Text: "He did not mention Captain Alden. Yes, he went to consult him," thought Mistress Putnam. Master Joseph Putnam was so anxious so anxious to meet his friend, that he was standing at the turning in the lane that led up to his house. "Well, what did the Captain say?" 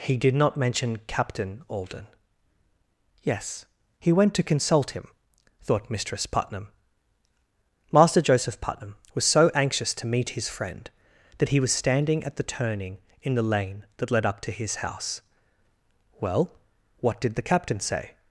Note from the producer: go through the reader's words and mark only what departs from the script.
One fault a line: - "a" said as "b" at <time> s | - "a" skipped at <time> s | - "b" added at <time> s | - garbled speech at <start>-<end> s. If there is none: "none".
- "so anxious" skipped at 9.9 s